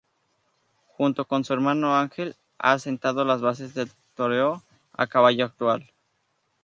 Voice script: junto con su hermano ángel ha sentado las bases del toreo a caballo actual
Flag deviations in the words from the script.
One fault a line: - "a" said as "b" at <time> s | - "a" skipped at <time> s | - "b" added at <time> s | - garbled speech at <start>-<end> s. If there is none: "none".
none